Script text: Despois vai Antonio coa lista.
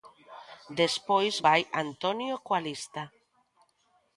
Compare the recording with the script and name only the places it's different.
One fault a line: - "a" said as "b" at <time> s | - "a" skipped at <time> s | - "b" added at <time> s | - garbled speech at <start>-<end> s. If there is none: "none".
none